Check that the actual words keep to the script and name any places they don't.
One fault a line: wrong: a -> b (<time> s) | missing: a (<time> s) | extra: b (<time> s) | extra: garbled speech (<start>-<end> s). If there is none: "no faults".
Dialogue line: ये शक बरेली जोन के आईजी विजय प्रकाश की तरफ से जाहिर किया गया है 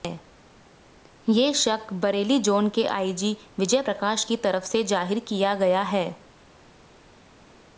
no faults